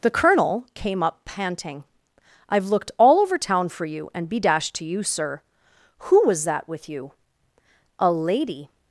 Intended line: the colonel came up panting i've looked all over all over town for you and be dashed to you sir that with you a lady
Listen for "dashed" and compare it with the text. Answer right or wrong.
right